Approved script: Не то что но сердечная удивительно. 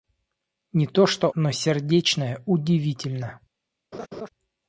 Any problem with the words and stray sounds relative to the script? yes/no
yes